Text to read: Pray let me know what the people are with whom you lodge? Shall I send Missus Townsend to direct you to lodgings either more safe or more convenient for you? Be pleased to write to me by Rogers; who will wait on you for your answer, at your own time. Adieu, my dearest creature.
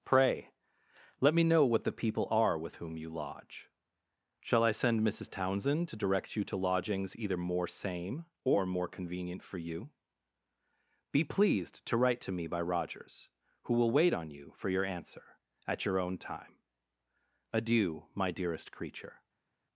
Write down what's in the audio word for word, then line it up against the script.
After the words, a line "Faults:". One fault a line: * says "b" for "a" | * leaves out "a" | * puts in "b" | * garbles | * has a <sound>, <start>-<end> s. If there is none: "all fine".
Pray let me know what the people are with whom you lodge? Shall I send Missus Townsend to direct you to lodgings either more same or more convenient for you? Be pleased to write to me by Rogers; who will wait on you for your answer, at your own time. Adieu, my dearest creature.
Faults:
* says "same" for "safe"